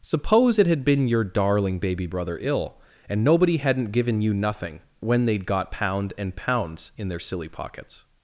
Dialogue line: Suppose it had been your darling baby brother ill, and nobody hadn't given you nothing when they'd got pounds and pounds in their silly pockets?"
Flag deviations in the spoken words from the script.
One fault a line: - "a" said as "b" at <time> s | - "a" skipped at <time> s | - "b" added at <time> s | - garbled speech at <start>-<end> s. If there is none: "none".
- "pounds" said as "pound" at 5.7 s